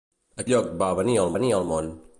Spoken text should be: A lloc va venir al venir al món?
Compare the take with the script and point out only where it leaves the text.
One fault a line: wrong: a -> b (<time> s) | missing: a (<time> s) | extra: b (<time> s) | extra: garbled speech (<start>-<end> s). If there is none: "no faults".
no faults